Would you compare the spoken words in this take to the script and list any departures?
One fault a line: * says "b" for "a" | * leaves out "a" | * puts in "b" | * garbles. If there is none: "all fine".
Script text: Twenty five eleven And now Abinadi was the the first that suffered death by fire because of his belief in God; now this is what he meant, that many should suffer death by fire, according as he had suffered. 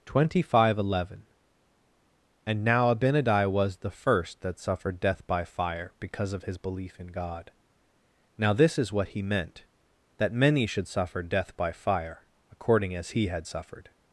* leaves out "the"